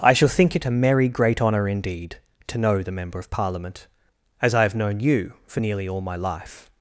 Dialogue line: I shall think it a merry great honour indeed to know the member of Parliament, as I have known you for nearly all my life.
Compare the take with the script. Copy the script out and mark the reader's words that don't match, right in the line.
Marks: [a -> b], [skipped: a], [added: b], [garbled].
I shall think it a merry great honour indeed to know the member of Parliament, as I have known you for nearly all my life.